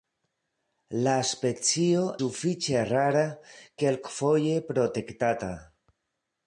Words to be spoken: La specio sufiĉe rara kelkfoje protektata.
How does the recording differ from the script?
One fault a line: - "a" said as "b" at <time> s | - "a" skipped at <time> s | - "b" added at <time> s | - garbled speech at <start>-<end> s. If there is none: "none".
none